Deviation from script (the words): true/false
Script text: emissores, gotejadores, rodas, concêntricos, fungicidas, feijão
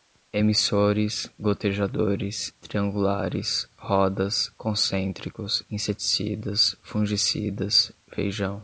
true